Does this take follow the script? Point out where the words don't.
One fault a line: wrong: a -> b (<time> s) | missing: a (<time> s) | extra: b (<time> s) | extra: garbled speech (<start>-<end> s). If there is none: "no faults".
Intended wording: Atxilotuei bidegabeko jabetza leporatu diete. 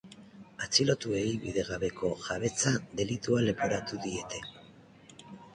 extra: delitua (3.0 s)